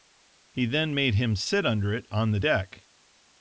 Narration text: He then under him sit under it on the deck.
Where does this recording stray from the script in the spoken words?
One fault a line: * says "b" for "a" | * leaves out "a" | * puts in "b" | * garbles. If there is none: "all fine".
* says "made" for "under"